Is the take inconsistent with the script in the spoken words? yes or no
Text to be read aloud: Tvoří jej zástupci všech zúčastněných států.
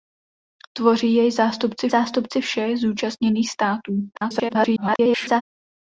yes